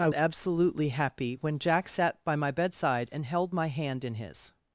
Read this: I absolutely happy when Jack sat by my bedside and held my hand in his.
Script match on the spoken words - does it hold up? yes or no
yes